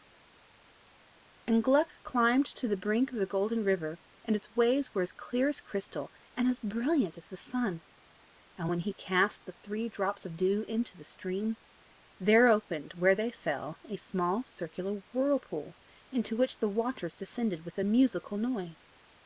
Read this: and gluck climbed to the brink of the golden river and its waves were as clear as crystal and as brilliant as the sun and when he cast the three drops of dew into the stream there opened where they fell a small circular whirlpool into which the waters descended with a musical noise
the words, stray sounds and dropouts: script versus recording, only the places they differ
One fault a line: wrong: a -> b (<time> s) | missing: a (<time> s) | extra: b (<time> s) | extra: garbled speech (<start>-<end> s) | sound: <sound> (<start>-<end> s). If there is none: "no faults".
no faults